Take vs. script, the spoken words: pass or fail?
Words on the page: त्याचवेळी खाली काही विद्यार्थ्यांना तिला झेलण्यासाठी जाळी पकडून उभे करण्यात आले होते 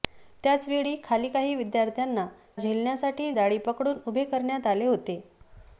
fail